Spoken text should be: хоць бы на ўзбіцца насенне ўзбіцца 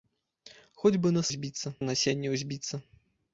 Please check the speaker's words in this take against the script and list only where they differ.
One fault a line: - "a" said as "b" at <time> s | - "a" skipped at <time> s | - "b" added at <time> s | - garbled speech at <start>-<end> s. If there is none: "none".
none